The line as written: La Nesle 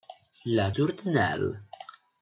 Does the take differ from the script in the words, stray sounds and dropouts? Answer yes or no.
yes